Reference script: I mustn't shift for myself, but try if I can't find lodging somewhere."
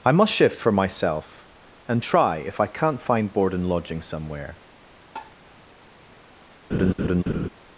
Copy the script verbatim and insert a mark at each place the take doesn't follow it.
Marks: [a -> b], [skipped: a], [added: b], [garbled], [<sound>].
I [mustn't -> must] shift for myself, [but -> and] try if I can't find [added: board and] lodging somewhere." [tap] [laugh]